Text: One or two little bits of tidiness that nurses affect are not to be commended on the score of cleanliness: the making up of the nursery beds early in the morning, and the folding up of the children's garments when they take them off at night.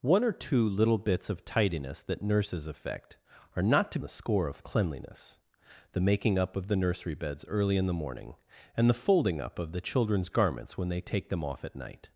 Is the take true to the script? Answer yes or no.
no